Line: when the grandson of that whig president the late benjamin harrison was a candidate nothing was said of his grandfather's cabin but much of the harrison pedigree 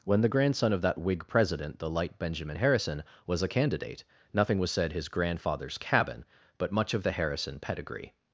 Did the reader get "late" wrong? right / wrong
wrong